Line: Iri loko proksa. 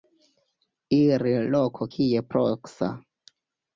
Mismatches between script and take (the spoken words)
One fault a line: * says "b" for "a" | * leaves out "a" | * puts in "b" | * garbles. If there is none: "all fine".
* puts in "kie"